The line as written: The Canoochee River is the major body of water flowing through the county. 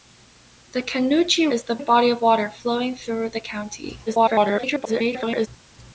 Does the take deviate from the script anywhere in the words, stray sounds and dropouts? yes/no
yes